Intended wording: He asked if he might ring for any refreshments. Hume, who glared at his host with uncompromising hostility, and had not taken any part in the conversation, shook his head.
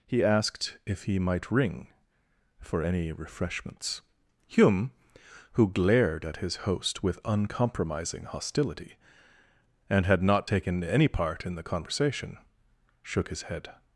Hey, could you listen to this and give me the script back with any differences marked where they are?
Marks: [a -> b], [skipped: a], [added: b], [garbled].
He asked if he might ring for any refreshments. Hume, who glared at his host with uncompromising hostility, and had not taken any part in the conversation, shook his head.